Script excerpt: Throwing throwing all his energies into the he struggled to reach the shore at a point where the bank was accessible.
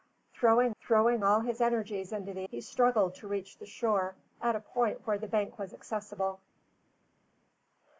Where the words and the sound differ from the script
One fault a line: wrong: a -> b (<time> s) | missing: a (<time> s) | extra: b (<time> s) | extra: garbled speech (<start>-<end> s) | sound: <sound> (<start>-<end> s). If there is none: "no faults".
no faults